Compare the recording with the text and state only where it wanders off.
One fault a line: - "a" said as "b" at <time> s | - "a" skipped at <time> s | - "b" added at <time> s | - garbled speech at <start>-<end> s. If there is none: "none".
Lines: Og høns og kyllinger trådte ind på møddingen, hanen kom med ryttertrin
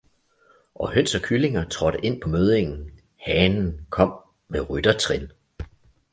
none